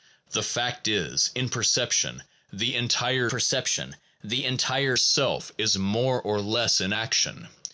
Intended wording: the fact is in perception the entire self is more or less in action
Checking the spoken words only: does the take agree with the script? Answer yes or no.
no